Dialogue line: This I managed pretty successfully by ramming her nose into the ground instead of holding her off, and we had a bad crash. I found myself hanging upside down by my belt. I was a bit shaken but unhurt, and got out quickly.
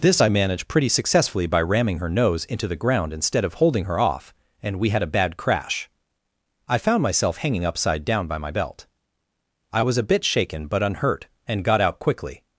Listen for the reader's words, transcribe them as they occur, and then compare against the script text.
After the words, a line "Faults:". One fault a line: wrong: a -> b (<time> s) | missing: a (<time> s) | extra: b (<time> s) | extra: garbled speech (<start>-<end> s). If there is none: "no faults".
This I managed pretty successfully by ramming her nose into the ground instead of holding her off, and we had a bad crash. I found myself hanging upside down by my belt. I was a bit shaken but unhurt, and got out quickly.
Faults:
no faults